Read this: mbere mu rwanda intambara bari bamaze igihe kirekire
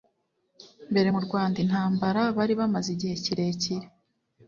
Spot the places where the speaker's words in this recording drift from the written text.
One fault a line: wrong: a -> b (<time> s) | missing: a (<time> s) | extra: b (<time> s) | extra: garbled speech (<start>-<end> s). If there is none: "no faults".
no faults